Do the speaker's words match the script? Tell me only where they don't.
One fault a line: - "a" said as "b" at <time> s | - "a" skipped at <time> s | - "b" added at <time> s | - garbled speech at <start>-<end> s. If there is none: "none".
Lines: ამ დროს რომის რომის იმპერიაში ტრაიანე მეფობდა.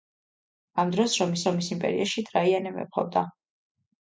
none